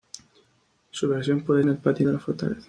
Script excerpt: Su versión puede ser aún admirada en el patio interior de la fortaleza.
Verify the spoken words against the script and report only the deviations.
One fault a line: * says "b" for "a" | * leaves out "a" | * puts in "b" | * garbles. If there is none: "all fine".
* leaves out "ser aún admirada"
* leaves out "interior"